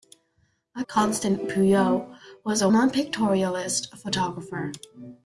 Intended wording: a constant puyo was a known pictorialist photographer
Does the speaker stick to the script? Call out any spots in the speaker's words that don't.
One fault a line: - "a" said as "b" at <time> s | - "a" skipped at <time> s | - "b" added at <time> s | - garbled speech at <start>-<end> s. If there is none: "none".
none